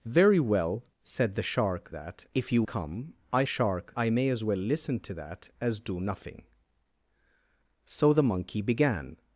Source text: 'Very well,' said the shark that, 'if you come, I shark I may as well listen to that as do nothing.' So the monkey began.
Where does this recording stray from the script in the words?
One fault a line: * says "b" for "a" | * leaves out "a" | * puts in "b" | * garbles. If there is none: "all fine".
all fine